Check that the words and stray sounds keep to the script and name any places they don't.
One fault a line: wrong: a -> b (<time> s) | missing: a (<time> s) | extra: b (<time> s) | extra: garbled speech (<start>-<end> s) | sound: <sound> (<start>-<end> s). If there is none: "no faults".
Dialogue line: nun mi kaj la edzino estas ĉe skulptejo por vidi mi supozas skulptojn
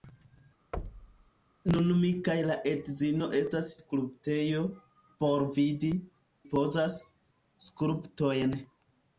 sound: thud (0.7-1.3 s)
missing: ĉe (3.7 s)
missing: mi (5.9 s)